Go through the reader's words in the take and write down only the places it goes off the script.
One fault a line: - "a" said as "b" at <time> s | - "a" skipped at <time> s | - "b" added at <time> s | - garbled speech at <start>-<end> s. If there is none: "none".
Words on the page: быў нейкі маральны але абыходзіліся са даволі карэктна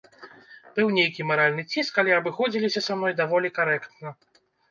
- "ціск" added at 1.8 s
- "мной" added at 3.0 s